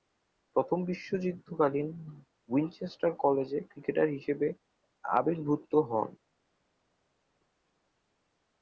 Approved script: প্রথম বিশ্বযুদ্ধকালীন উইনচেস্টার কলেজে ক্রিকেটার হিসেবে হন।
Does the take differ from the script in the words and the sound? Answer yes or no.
yes